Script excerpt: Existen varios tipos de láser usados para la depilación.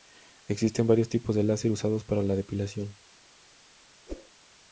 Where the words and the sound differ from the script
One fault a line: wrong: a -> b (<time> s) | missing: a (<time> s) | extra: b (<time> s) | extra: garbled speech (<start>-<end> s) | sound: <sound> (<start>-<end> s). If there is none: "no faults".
sound: whoosh (4.1-4.3 s)